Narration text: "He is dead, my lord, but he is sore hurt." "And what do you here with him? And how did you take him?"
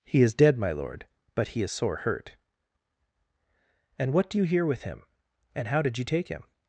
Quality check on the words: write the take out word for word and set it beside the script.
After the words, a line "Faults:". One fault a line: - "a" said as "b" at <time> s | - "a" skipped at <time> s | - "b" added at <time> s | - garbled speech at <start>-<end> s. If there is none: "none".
"He is dead, my lord, but he is sore hurt." "And what do you here with him? And how did you take him?"
Faults:
none